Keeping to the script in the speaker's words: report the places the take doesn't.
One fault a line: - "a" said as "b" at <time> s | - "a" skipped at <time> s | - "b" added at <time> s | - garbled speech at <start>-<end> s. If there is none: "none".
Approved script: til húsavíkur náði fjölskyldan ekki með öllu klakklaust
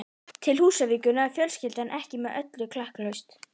none